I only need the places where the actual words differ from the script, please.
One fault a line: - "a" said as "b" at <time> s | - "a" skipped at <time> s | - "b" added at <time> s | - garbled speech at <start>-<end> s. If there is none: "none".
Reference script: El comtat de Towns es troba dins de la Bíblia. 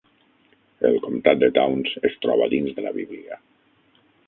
none